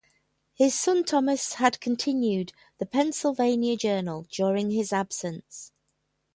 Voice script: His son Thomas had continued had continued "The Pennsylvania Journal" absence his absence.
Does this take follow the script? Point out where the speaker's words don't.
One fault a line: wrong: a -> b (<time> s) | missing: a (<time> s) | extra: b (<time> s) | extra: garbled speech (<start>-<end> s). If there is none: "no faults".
missing: had continued (2.5 s)
wrong: absence -> during (4.3 s)